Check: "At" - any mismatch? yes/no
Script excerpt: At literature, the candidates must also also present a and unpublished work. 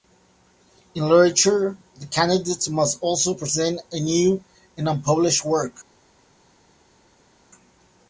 yes